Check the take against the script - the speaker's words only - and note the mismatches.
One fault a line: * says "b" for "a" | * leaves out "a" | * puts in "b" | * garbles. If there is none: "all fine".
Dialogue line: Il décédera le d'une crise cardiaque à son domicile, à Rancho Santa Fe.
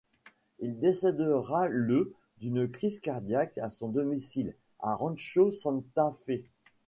all fine